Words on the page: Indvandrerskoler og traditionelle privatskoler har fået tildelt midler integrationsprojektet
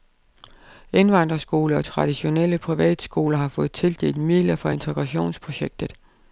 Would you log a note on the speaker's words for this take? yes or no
yes